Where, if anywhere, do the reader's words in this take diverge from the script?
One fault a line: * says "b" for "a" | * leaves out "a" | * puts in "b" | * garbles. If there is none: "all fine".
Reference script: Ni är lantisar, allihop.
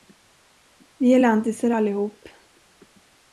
* says "Vi" for "Ni"